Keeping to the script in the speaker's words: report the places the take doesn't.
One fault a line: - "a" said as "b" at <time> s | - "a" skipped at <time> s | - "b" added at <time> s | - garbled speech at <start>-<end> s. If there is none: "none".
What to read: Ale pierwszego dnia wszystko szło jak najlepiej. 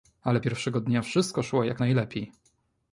none